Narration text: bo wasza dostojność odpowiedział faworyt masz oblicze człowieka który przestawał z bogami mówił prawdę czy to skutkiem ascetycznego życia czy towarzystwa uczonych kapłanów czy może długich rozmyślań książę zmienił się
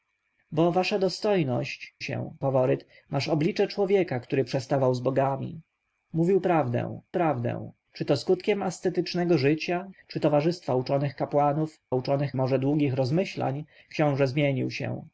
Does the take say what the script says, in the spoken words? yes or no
no